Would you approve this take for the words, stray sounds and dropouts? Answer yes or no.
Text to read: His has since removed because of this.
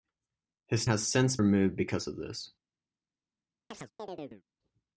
no